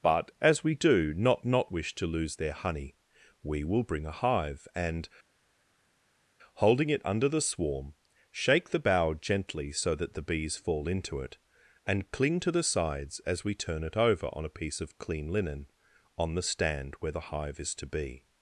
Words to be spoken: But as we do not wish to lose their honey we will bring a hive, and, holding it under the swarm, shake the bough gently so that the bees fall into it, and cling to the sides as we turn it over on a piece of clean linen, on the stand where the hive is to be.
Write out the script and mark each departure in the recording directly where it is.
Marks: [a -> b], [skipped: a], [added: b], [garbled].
But as we do not [added: not] wish to lose their honey we will bring a hive, and, holding it under the swarm, shake the bough gently so that the bees fall into it, and cling to the sides as we turn it over on a piece of clean linen, on the stand where the hive is to be.